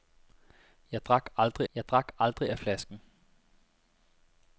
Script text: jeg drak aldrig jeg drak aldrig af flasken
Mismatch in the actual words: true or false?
false